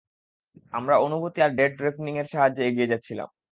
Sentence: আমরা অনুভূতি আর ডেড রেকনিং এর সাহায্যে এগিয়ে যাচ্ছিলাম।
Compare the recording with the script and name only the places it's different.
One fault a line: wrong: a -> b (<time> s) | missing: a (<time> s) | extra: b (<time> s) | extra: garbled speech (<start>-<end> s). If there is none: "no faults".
no faults